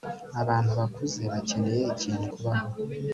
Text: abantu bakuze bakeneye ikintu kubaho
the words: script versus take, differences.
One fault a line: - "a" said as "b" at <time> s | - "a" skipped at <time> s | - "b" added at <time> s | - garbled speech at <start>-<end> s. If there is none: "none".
none